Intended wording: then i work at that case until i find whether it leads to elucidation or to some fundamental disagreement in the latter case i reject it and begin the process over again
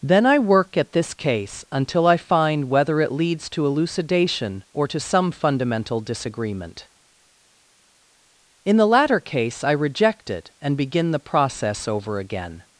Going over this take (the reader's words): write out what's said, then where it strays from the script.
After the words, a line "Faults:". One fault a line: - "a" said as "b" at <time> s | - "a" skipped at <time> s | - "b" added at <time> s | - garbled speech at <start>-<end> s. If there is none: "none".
then i work at this case until i find whether it leads to elucidation or to some fundamental disagreement in the latter case i reject it and begin the process over again
Faults:
- "that" said as "this" at 0.9 s